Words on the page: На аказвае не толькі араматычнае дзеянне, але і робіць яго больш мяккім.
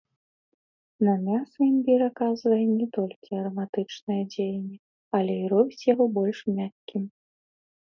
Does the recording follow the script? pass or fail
fail